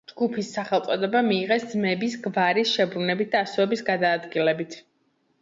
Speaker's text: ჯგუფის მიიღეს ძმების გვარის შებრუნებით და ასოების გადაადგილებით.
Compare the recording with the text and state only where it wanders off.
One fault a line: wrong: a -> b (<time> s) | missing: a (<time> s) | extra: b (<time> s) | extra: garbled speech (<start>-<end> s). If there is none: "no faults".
extra: სახელწოდება (0.6 s)